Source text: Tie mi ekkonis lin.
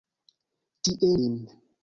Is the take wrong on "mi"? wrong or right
wrong